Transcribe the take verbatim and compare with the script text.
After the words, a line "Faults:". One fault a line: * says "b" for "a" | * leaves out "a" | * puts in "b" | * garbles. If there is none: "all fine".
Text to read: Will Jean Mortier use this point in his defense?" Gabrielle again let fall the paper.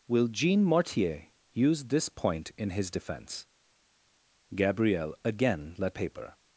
Will Jean Mortier use this point in his defense?" Gabrielle again let paper.
Faults:
* leaves out "fall the"